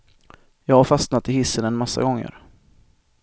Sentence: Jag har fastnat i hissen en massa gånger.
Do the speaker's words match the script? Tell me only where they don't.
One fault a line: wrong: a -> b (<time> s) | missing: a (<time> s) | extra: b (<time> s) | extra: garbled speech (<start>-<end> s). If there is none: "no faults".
no faults